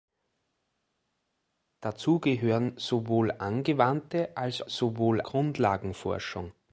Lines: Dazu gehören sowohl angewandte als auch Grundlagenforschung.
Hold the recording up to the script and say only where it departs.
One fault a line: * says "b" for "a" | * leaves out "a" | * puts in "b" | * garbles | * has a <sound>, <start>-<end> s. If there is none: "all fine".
* says "sowohl" for "auch"